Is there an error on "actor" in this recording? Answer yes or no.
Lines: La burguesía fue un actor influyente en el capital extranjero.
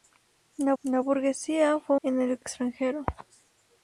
yes